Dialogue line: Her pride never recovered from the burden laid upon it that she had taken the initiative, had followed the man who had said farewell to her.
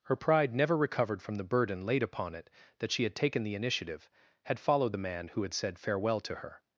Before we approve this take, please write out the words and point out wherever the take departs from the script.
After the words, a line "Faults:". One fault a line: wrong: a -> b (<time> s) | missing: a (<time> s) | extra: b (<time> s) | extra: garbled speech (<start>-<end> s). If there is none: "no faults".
Her pride never recovered from the burden laid upon it that she had taken the initiative, had followed the man who had said farewell to her.
Faults:
no faults